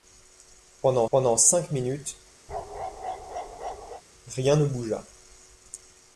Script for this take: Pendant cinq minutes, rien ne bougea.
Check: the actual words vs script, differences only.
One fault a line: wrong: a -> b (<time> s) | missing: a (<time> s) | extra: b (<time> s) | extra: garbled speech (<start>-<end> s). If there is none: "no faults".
extra: pendant (1.1 s)